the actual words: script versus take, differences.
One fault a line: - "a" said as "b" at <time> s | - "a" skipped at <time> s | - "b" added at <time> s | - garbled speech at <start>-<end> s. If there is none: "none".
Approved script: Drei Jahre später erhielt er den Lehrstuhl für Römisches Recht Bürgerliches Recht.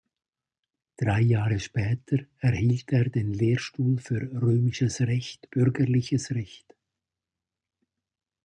none